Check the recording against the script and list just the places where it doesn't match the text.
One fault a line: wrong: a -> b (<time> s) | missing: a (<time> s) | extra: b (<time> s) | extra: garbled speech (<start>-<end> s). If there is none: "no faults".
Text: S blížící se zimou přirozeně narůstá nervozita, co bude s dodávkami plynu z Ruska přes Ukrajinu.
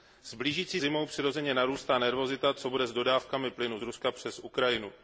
missing: se (0.8 s)